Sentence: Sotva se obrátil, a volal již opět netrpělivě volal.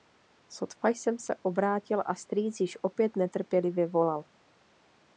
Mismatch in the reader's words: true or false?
true